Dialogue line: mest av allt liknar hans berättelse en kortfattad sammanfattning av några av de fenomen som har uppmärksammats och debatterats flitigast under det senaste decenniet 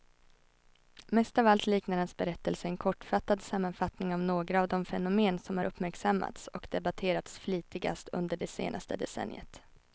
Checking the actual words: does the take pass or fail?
pass